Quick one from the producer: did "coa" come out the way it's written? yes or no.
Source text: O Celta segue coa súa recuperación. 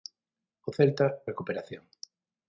no